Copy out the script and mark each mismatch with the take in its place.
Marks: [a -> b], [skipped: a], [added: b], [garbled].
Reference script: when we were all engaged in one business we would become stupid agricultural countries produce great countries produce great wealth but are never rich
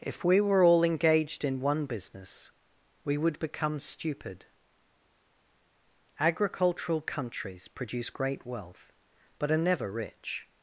[when -> if] we were all engaged in one business we would become stupid agricultural countries produce great [skipped: countries produce great] wealth but are never rich